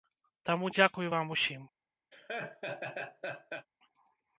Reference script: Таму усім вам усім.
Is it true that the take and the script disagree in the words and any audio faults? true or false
true